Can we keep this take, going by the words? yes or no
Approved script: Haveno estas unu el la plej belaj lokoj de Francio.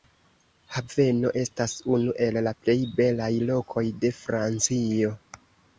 yes